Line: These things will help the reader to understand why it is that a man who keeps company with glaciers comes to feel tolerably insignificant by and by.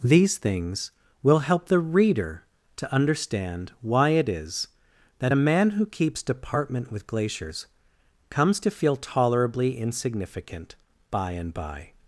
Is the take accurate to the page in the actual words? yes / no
no